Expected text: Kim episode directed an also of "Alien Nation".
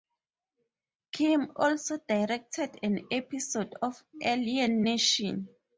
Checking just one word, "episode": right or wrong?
wrong